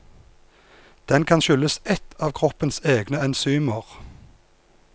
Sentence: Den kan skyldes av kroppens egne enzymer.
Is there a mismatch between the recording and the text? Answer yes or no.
yes